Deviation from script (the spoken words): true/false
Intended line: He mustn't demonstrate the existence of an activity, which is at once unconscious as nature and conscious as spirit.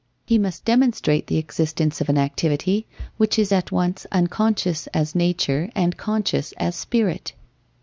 true